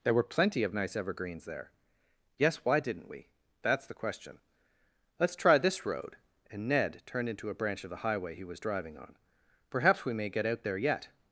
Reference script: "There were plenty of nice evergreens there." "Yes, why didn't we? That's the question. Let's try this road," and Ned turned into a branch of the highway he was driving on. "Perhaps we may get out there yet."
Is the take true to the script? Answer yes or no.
yes